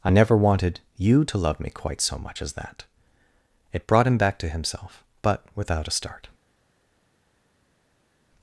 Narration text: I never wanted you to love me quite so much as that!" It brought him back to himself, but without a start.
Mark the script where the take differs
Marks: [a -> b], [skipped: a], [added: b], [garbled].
I never wanted you to love me quite so much as that!" It brought him back to himself, but without a start.